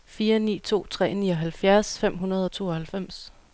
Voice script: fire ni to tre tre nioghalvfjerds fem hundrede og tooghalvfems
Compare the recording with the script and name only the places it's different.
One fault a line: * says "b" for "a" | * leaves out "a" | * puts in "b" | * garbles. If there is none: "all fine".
* leaves out "tre"